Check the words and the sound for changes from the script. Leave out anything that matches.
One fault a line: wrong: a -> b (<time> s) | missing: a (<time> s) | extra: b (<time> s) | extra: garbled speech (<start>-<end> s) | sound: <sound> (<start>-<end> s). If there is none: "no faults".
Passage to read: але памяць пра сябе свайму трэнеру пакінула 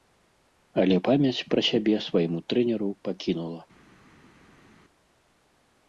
no faults